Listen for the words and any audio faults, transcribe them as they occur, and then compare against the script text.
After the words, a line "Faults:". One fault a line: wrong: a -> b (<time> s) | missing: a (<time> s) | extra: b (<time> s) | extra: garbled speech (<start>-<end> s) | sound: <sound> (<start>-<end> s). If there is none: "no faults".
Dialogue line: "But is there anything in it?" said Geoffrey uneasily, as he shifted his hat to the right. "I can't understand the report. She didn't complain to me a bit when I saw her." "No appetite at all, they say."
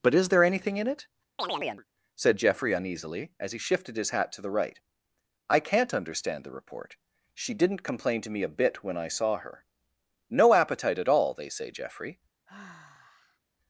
"But is there anything in it?" said Geoffrey uneasily, as he shifted his hat to the right. "I can't understand the report. She didn't complain to me a bit when I saw her." "No appetite at all, they say." Geoffrey
Faults:
sound: chirp (1.4-1.8 s)
extra: Geoffrey (11.7 s)
sound: sigh (12.5-13.4 s)